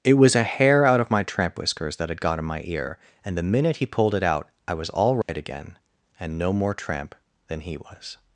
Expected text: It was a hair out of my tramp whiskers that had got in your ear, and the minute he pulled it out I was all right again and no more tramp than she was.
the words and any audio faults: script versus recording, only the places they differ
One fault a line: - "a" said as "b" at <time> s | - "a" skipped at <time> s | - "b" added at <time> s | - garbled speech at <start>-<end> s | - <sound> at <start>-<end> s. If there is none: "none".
- "your" said as "my" at 2.5 s
- dropout at 5.2-5.3 s
- "she" said as "he" at 7.6 s